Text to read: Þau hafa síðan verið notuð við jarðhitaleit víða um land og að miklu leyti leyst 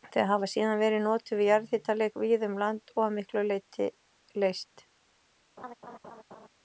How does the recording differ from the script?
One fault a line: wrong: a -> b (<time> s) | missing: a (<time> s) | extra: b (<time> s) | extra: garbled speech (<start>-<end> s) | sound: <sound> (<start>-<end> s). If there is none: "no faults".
sound: laugh (5.6-6.5 s)